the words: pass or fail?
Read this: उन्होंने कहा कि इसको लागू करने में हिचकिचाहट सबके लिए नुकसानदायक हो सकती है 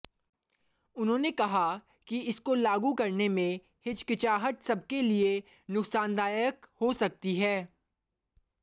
pass